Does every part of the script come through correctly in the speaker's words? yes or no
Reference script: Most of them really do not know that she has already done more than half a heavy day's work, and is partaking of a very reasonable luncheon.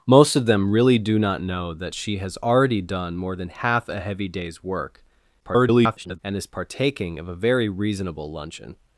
no